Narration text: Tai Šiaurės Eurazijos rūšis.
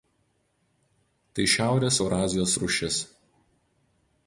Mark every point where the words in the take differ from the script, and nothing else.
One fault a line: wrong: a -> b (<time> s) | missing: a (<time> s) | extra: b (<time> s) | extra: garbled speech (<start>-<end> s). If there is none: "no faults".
no faults